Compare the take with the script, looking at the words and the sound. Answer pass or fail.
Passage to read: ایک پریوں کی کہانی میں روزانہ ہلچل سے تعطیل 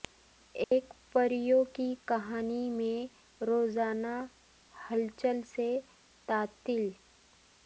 fail